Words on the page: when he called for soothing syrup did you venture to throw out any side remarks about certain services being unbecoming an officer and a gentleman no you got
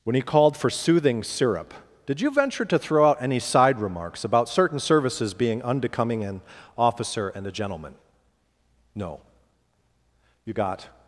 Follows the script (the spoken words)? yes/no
yes